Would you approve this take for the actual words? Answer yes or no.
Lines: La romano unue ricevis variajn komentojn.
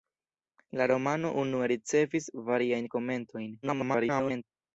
no